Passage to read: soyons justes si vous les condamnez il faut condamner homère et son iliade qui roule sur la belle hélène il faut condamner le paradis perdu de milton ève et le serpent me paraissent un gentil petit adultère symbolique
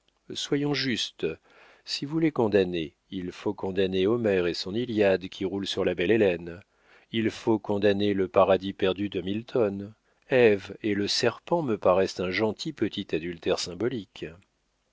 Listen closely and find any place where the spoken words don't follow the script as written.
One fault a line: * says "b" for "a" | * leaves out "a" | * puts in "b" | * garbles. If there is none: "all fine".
all fine